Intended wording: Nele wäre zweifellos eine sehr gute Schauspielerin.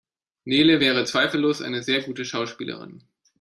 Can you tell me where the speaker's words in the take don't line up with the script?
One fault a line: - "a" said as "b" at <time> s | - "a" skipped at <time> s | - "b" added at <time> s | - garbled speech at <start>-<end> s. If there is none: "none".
none